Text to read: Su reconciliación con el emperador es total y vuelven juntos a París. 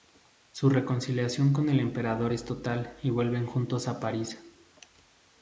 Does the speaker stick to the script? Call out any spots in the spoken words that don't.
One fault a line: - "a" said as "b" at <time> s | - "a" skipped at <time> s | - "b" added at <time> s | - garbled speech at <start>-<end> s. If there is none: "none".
none